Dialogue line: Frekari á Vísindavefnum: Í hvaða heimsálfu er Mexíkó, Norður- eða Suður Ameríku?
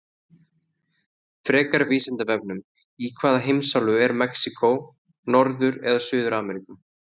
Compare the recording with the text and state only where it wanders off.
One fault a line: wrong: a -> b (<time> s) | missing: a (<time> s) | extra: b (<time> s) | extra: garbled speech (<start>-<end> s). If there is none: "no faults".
no faults